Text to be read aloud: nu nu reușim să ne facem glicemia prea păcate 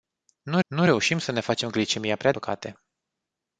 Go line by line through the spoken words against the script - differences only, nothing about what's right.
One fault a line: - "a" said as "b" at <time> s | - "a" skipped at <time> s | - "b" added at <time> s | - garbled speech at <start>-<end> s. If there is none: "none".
none